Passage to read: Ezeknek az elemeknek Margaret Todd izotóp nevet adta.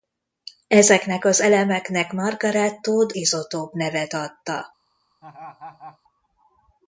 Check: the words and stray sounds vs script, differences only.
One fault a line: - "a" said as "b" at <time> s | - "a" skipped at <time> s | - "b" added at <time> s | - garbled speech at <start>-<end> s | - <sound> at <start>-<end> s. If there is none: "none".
- laugh at 5.2-6.0 s